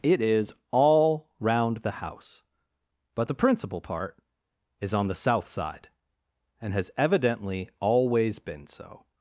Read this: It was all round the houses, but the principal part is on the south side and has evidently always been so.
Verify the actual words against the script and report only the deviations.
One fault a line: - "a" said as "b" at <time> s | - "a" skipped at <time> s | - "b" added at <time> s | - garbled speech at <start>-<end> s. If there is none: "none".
- "was" said as "is" at 0.2 s
- "houses" said as "house" at 1.9 s